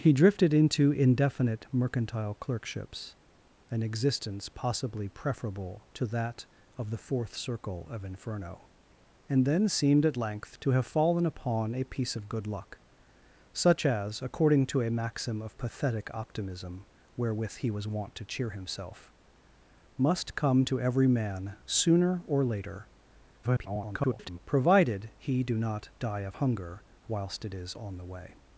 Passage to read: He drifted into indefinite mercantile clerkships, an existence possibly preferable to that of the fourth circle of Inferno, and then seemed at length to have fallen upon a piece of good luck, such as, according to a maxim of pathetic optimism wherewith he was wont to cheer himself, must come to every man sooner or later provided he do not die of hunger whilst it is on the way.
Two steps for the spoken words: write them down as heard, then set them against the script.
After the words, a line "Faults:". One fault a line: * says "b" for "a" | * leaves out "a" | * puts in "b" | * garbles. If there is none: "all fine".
He drifted into indefinite mercantile clerkships, an existence possibly preferable to that of the fourth circle of Inferno, and then seemed at length to have fallen upon a piece of good luck, such as, according to a maxim of pathetic optimism wherewith he was wont to cheer himself, must come to every man sooner or later [garbled] provided he do not die of hunger whilst it is on the way.
Faults:
* garbles